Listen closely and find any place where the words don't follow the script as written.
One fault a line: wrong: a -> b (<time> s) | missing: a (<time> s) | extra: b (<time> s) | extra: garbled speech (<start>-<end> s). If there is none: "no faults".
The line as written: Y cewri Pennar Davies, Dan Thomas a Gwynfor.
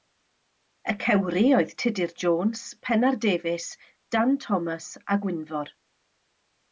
extra: oedd Tudur Jones (1.6 s)